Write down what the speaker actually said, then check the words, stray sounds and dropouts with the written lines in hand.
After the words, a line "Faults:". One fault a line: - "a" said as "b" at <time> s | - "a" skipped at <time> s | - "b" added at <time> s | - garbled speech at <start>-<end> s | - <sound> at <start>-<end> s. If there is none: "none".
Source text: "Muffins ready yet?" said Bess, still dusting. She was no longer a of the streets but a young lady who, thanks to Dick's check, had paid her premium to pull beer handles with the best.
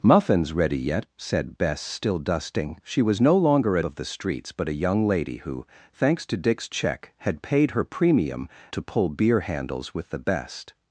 "Muffins ready yet?" said Bess, still dusting. She was no longer a of the streets but a young lady who, thanks to Dick's check, had paid her premium to pull beer handles with the best.
Faults:
none